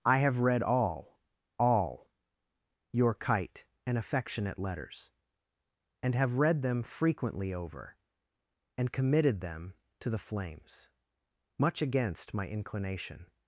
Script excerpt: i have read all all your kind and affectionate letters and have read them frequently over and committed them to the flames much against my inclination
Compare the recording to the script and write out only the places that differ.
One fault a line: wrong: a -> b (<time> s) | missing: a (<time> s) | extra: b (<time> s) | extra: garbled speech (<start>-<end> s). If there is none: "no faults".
wrong: kind -> kite (3.1 s)